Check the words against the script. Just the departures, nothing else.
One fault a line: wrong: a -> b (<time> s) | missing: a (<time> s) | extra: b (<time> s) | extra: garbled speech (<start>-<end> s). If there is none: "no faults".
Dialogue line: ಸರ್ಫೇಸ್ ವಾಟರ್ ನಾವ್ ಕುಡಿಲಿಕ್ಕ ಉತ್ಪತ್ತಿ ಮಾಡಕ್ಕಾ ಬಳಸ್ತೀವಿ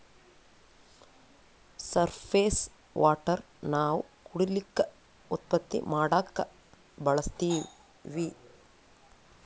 no faults